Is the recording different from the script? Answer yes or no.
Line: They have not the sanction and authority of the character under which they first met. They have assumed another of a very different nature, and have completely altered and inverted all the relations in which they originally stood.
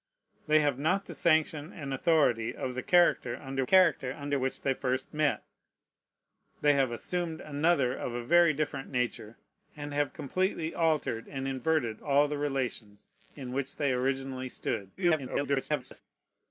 yes